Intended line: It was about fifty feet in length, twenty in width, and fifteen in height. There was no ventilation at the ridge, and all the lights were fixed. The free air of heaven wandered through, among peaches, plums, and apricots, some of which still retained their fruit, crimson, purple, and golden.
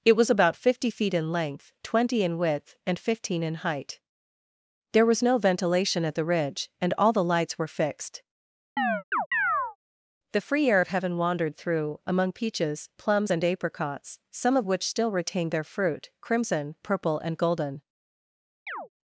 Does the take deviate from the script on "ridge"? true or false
false